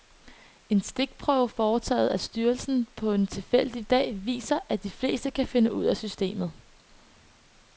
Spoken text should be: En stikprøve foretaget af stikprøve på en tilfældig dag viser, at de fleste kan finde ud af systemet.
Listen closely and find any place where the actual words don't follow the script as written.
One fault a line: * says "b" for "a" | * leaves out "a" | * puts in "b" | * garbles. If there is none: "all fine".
* says "styrelsen" for "stikprøve"